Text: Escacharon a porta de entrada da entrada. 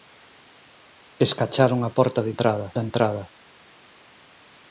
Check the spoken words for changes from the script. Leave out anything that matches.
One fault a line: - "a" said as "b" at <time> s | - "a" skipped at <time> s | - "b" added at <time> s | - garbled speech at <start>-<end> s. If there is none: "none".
none